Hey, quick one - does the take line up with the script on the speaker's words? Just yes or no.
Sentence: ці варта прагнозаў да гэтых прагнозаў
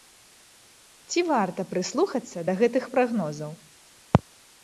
no